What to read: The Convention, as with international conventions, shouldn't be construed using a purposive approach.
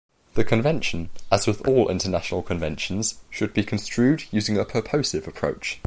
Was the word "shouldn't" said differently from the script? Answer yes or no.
yes